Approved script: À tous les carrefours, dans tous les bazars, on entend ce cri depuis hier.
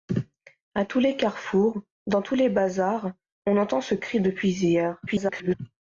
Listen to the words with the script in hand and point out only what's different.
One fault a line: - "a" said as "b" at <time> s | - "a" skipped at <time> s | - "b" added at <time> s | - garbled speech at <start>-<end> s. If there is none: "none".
- garbled speech at 5.1-5.6 s